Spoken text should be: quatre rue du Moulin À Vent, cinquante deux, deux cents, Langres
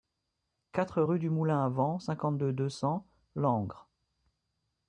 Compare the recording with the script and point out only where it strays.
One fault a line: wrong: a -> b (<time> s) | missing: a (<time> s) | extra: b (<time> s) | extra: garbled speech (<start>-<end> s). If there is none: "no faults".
no faults